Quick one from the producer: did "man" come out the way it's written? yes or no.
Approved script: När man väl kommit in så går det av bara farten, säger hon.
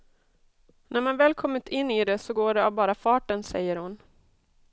yes